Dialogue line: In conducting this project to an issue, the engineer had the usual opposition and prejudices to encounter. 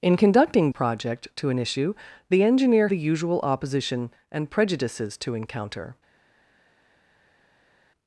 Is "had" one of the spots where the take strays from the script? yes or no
yes